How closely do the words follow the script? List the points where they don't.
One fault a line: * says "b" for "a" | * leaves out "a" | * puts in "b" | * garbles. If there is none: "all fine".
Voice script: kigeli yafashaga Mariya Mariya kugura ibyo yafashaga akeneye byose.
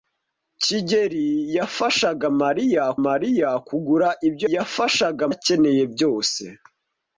all fine